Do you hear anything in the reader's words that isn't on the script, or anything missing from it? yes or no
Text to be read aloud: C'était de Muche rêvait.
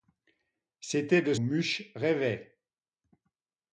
no